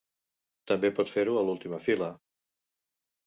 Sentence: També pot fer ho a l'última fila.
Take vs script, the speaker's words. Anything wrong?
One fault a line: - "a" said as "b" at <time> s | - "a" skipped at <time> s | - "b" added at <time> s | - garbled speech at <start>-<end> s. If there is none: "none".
none